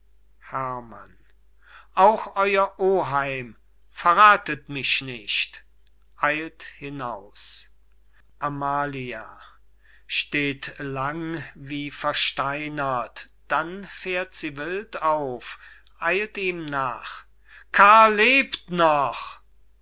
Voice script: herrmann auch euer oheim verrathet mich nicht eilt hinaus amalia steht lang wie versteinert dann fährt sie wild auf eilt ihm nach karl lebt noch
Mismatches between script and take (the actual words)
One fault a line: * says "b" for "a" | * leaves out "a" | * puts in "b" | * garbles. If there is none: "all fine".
all fine